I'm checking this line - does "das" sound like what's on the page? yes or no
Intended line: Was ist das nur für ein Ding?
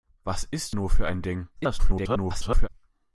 no